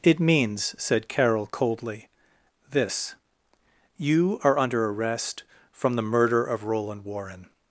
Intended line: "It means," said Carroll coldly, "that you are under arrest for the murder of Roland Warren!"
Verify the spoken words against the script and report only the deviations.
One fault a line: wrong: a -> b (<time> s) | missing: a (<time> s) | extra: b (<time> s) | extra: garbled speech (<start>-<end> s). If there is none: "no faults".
wrong: that -> this (2.7 s)
wrong: for -> from (5.7 s)